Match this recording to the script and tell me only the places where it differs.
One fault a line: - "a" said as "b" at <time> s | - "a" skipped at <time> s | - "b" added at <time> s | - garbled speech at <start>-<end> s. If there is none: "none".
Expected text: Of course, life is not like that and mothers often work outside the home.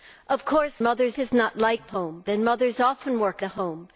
- "life" said as "mothers" at 0.8 s
- "that" said as "home" at 1.9 s
- "outside" skipped at 3.4 s